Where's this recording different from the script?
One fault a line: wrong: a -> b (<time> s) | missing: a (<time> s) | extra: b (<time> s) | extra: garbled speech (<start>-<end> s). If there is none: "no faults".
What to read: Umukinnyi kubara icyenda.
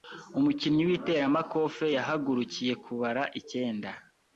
extra: w'iteramakofe yahagurukiye (0.9 s)